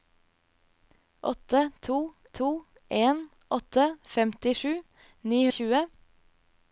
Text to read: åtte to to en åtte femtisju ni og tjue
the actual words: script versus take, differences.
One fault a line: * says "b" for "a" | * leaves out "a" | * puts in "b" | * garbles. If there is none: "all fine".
all fine